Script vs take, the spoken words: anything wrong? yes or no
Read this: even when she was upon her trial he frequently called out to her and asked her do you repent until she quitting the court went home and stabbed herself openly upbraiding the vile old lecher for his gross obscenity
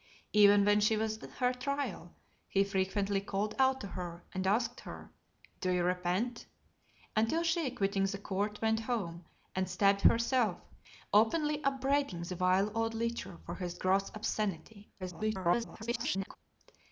yes